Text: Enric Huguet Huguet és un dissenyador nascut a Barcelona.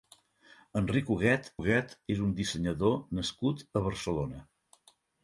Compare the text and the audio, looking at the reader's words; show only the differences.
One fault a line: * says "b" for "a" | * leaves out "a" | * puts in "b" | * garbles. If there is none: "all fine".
all fine